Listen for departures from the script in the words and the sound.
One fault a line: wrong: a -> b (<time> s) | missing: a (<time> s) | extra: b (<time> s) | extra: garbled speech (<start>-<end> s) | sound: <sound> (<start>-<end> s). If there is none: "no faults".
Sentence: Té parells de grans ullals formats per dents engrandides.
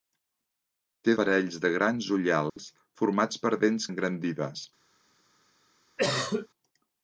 sound: dropout (2.5-2.6 s)
sound: cough (6.0-6.5 s)